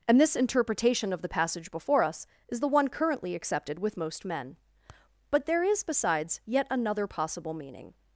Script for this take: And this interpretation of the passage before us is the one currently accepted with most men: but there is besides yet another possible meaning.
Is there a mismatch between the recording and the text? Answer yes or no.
no